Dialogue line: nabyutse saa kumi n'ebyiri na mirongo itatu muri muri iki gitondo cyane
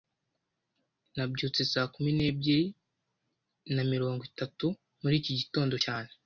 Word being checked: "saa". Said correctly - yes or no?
yes